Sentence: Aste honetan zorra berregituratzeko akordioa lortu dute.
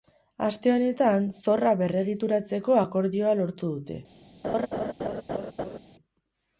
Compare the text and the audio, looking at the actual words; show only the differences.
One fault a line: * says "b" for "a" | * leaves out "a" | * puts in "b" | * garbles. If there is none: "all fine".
all fine